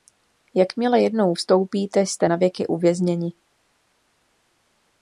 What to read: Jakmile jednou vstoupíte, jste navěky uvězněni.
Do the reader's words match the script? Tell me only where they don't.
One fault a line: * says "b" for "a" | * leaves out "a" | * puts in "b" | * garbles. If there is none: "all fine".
all fine